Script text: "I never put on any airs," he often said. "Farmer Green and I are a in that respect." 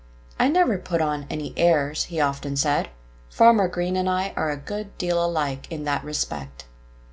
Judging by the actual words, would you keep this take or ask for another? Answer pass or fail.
fail